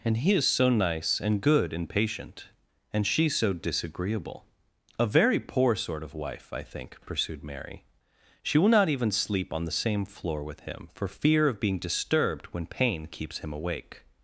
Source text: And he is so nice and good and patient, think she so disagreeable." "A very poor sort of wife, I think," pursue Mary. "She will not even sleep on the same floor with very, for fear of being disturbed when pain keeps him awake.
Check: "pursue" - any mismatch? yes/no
yes